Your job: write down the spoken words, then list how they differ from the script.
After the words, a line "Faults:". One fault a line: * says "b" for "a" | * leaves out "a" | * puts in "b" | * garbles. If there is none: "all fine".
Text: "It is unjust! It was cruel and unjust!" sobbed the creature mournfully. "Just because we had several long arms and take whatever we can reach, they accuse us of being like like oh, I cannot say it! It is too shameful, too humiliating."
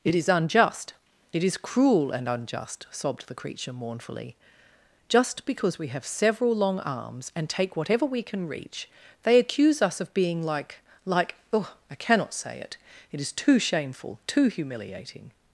"It is unjust! It is cruel and unjust!" sobbed the creature mournfully. "Just because we have several long arms and take whatever we can reach, they accuse us of being like like oh, I cannot say it! It is too shameful, too humiliating."
Faults:
* says "is" for "was"
* says "have" for "had"